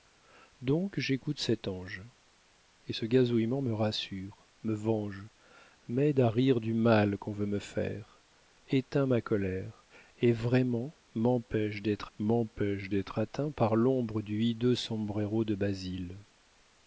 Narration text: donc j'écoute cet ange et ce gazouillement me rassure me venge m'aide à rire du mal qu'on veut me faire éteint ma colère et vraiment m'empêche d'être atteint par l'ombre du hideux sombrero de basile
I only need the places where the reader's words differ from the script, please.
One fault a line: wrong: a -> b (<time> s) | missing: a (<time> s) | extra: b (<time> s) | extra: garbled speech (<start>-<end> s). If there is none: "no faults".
extra: m'empêche d'être (12.2 s)